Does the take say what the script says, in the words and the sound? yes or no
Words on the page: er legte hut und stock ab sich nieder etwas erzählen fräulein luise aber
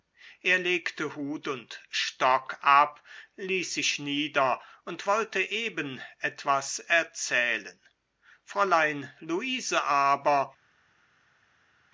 no